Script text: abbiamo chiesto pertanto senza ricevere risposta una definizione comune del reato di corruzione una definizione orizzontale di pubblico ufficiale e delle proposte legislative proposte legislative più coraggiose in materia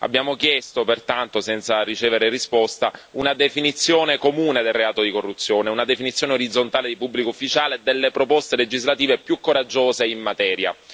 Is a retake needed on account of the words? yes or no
yes